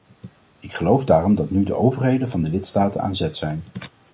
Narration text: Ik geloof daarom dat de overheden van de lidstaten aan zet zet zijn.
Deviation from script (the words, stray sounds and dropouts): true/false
true